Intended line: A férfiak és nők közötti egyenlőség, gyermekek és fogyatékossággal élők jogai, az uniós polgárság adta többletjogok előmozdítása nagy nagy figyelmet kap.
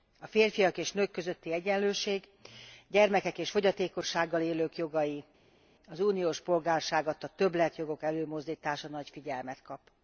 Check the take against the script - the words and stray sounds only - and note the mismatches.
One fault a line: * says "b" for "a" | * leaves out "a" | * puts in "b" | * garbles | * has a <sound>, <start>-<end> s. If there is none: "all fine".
* leaves out "nagy"